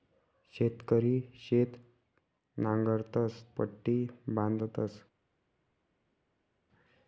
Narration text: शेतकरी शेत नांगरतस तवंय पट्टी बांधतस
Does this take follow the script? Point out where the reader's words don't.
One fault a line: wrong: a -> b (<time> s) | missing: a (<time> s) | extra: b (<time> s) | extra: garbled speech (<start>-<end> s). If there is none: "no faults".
missing: तवंय (3.4 s)